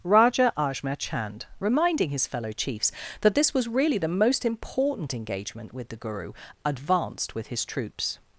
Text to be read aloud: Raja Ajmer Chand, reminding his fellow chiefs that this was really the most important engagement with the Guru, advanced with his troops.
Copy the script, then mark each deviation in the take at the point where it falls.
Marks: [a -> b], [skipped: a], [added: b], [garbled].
Raja Ajmer Chand, reminding his fellow chiefs that this was really the most important engagement with the Guru, advanced with his troops.